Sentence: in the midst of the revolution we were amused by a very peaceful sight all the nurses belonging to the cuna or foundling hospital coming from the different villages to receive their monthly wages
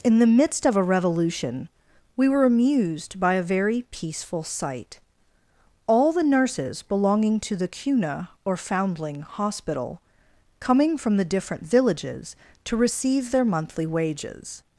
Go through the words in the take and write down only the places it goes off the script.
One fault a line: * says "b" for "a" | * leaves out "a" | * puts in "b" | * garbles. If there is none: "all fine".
* says "a" for "the"